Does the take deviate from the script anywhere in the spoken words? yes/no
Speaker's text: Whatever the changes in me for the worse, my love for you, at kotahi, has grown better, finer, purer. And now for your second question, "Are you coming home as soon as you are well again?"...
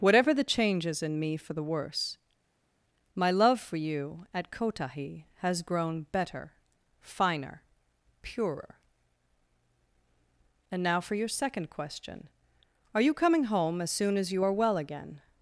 no